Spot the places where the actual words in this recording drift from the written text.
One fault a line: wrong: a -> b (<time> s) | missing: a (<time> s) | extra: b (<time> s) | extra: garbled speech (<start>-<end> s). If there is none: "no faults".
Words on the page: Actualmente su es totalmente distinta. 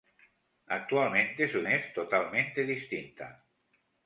no faults